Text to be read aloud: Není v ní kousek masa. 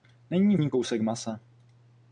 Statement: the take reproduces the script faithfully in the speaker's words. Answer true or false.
true